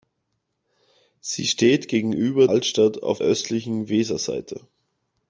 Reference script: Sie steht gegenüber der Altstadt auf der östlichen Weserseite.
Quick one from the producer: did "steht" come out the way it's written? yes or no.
yes